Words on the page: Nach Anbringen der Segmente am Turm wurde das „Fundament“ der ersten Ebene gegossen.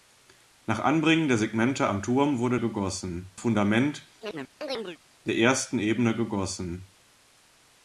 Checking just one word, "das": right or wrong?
wrong